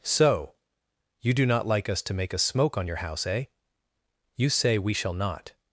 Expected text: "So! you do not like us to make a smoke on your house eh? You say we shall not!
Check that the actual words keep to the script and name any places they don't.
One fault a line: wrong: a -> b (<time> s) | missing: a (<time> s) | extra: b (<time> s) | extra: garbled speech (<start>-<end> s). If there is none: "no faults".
no faults